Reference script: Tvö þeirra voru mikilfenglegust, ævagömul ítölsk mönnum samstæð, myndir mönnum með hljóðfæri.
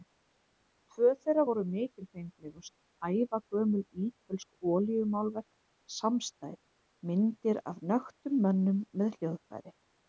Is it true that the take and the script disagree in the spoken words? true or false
true